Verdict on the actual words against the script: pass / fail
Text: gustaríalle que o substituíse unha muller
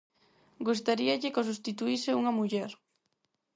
pass